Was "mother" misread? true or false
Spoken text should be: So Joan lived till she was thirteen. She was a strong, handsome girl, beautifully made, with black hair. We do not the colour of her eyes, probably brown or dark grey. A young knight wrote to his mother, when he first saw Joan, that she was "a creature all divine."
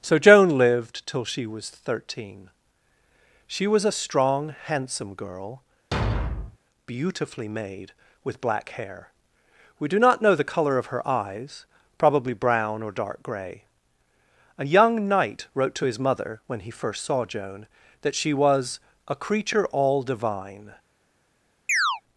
false